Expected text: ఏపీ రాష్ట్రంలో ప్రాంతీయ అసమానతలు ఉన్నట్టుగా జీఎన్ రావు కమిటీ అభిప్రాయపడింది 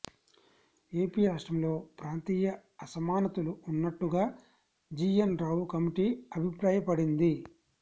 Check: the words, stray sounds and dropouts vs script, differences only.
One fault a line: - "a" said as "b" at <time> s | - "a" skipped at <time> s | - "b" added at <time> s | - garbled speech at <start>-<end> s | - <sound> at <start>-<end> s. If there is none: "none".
none